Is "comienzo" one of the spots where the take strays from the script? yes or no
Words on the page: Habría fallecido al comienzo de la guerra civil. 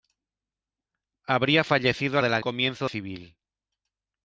yes